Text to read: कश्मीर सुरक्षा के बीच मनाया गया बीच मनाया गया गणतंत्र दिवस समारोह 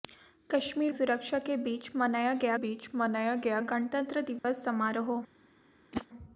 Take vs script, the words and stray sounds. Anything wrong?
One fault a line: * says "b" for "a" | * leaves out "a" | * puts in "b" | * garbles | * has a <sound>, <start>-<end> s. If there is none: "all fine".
* has a dropout, 4.4-4.4 s
* has a whoosh, 5.9-6.1 s